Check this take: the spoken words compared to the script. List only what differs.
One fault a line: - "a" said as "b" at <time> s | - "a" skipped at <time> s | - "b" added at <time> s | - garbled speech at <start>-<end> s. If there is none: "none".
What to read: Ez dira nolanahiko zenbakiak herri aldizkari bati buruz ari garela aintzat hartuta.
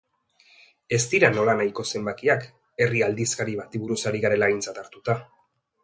none